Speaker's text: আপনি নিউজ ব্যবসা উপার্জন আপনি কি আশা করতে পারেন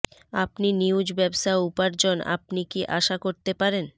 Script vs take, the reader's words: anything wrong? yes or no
no